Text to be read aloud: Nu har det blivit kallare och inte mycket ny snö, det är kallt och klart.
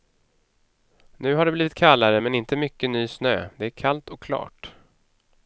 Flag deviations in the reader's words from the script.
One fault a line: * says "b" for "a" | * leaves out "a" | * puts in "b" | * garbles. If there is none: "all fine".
* says "men" for "och"